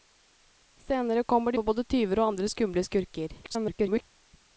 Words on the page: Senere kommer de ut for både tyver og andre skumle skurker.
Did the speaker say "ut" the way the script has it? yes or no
no